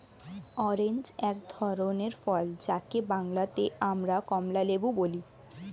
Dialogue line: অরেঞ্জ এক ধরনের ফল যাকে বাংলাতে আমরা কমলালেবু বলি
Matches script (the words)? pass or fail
pass